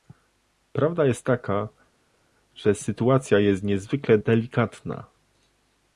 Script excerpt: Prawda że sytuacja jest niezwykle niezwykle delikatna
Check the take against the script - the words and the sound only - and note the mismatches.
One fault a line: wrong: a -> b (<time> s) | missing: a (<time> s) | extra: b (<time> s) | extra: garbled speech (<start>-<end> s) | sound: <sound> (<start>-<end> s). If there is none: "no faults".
extra: jest taka (1.1 s)
missing: niezwykle (4.2 s)